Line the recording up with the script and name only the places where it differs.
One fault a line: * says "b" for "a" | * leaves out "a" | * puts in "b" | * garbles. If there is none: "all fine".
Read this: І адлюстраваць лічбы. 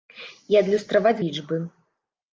all fine